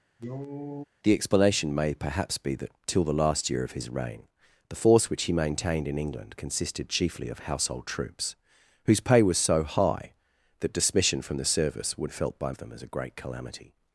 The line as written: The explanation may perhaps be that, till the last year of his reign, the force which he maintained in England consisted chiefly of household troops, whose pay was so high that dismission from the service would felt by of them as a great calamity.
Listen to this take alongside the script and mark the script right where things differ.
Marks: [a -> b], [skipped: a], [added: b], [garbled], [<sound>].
[cough] The explanation may perhaps be that, till the last year of his reign, the force which he maintained in England consisted chiefly of household troops, whose pay was so high that dismission from the service would felt by of them as a great calamity.